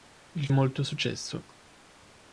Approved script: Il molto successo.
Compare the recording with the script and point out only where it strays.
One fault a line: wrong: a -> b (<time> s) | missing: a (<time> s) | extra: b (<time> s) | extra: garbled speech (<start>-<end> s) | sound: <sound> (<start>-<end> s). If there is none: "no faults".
no faults